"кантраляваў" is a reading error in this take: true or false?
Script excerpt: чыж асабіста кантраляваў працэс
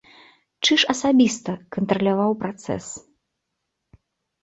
false